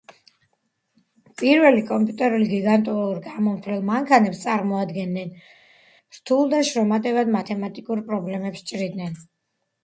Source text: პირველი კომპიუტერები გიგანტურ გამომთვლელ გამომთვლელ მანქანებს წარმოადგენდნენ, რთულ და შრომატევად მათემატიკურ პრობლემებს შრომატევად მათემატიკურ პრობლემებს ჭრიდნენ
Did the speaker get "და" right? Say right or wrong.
right